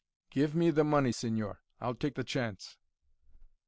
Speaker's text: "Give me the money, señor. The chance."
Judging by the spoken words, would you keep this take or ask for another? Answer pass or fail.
fail